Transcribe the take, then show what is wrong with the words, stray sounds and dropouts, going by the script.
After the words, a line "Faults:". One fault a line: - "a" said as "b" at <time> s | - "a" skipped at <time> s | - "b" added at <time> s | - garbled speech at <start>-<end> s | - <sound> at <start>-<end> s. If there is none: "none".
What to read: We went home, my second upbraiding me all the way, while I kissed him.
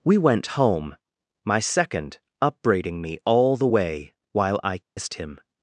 We went home, my second upbraiding me all the way, while I kissed him.
Faults:
- dropout at 4.8-5.0 s